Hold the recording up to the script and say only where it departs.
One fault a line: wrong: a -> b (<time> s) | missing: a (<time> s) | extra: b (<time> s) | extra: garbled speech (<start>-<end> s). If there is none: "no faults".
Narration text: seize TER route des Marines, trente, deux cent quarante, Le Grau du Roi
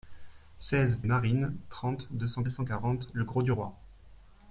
missing: TER route des (1.0 s)
extra: cent (2.5 s)